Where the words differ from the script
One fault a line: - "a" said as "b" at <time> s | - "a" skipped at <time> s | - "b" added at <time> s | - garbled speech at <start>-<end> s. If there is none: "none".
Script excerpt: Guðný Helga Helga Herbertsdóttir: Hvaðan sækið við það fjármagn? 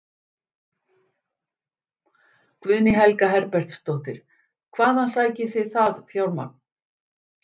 - "Helga" skipped at 3.3 s
- "við" said as "þið" at 5.6 s